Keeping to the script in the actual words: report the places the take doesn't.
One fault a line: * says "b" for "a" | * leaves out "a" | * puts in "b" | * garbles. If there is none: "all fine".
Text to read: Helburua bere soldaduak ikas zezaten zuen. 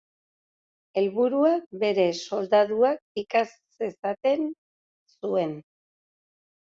all fine